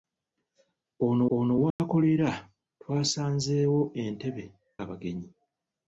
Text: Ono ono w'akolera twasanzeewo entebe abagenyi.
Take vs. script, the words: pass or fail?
pass